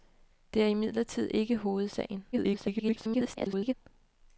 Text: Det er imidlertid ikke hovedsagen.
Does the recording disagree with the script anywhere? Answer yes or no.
yes